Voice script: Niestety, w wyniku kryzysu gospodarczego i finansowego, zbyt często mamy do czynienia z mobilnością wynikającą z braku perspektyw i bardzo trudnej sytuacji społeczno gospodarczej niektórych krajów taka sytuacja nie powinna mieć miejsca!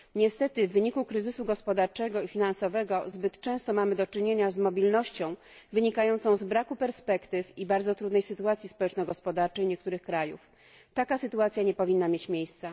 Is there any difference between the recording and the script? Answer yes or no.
no